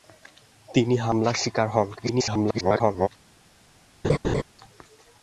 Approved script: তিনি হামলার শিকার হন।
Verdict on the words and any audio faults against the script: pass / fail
fail